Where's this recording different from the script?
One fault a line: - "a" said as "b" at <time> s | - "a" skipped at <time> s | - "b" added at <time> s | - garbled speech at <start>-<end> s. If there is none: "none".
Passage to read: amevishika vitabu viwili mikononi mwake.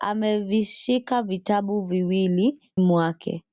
- "mikononi" skipped at 2.7 s